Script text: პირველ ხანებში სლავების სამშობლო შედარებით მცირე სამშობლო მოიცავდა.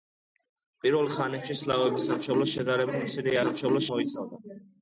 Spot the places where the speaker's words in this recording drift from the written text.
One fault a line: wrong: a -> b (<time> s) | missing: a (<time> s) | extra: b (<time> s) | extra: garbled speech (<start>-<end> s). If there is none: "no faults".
no faults